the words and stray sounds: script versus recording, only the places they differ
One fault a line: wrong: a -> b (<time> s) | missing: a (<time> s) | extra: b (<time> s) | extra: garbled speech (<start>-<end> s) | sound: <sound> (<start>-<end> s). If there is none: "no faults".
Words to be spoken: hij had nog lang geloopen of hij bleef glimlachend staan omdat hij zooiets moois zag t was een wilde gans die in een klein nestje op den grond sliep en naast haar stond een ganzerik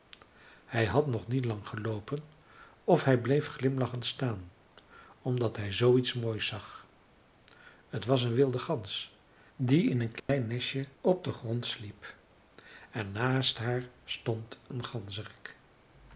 extra: niet (1.3 s)
sound: dropout (10.2-10.3 s)